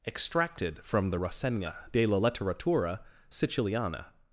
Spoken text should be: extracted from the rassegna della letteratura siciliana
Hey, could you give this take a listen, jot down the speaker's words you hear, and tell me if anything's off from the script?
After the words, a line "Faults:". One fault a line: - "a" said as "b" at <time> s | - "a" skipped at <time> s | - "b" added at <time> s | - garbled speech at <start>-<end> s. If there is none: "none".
extracted from the rassegna della letteratura siciliana
Faults:
none